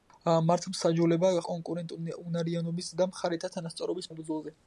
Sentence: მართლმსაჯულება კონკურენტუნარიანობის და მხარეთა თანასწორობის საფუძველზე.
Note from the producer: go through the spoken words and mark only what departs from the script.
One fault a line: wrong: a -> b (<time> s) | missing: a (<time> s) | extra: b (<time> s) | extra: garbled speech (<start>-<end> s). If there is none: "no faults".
no faults